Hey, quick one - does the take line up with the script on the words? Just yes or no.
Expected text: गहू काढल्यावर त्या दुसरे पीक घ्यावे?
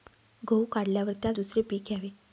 yes